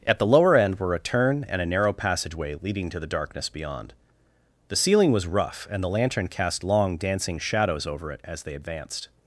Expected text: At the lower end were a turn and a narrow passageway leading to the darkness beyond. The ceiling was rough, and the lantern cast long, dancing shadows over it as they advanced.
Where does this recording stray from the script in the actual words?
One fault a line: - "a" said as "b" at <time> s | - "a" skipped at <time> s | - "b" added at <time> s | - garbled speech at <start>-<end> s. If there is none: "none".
none